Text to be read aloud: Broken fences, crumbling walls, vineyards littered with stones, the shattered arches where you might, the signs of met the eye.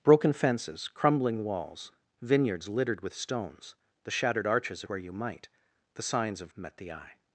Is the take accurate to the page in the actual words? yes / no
yes